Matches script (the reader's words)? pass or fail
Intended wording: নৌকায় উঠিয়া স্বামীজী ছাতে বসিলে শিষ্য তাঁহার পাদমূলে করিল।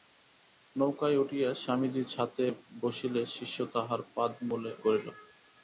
pass